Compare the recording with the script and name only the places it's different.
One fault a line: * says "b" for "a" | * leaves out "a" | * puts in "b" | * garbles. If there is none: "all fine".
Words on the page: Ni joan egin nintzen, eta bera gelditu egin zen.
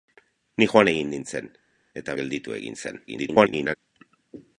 * leaves out "bera"
* garbles